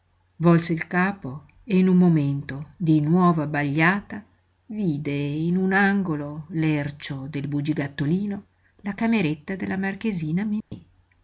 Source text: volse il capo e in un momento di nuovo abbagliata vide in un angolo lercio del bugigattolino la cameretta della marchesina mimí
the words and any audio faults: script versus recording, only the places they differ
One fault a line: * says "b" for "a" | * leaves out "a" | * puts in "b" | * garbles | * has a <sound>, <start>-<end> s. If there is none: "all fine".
* has a dropout, 10.6-10.7 s